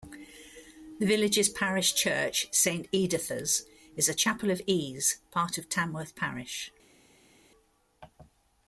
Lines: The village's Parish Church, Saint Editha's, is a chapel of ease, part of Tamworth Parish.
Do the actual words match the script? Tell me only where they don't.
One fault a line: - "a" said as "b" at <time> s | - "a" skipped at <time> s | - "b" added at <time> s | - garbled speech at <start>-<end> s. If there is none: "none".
none